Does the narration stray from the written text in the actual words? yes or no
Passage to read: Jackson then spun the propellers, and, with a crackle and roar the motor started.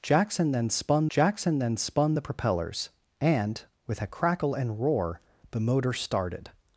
yes